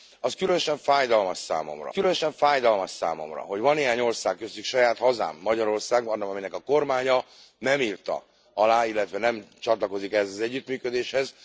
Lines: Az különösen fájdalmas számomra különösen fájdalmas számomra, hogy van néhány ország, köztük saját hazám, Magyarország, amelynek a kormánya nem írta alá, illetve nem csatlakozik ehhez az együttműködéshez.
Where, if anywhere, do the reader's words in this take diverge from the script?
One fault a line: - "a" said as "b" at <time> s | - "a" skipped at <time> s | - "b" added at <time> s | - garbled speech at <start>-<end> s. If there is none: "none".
none